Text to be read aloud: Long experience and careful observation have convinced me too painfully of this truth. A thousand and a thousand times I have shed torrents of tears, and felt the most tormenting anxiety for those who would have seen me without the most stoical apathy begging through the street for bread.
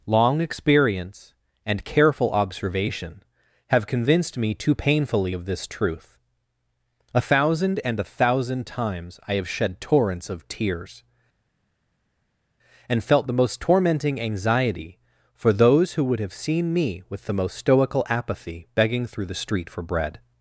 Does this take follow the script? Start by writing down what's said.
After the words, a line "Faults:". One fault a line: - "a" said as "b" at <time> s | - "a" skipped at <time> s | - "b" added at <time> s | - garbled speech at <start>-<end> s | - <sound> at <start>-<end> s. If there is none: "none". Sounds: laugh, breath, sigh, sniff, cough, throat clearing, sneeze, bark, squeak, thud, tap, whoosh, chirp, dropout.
Long experience and careful observation have convinced me too painfully of this truth. A thousand and a thousand times I have shed torrents of tears, and felt the most tormenting anxiety for those who would have seen me with the most stoical apathy begging through the street for bread.
Faults:
- "without" said as "with" at 17.1 s